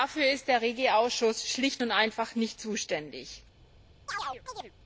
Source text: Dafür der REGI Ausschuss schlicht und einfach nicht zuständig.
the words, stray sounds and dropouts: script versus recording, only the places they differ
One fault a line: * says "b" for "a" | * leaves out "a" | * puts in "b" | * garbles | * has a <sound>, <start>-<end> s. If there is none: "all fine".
* puts in "ist"
* has a chirp, 4.1-4.7 s